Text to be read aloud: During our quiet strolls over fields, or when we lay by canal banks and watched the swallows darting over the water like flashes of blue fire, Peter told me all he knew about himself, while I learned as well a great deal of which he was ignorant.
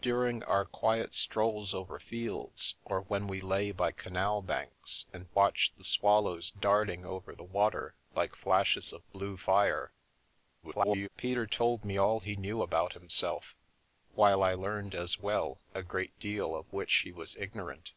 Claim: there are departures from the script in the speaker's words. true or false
true